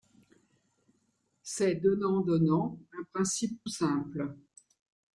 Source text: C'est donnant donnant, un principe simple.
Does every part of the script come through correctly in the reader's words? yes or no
yes